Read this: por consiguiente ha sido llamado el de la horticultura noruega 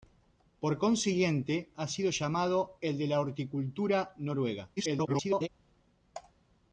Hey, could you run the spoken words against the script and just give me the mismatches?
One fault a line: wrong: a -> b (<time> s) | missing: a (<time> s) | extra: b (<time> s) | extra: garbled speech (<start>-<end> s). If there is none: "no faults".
extra: garbled speech (4.8-5.5 s)